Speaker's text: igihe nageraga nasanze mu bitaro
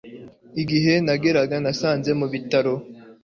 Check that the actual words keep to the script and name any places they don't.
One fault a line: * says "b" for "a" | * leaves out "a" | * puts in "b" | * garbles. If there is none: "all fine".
all fine